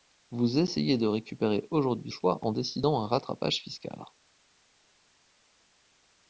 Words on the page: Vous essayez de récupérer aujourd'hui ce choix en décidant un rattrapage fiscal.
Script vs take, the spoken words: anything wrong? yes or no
yes